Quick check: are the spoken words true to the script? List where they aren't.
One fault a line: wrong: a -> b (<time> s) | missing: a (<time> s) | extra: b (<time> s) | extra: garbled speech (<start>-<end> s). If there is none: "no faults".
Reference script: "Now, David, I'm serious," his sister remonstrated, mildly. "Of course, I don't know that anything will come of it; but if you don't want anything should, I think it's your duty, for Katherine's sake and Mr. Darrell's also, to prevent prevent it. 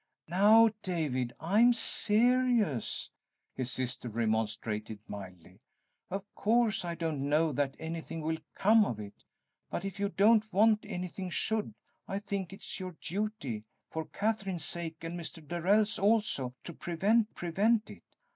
no faults